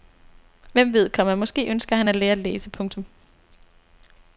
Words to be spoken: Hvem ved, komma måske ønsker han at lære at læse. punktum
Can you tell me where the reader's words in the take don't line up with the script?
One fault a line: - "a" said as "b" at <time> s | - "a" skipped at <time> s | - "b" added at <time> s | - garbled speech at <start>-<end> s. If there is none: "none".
none